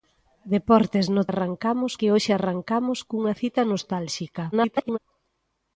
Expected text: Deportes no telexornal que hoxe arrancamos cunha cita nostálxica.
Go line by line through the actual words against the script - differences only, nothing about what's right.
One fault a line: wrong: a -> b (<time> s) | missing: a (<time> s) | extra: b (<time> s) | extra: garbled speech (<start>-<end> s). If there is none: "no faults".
wrong: telexornal -> arrancamos (1.3 s)
extra: garbled speech (4.5-5.0 s)